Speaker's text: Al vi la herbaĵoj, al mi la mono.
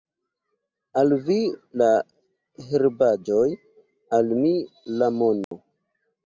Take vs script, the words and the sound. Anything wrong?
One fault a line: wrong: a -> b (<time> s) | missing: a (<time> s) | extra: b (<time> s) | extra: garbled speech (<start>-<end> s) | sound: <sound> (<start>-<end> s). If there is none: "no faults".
sound: dropout (5.4-5.5 s)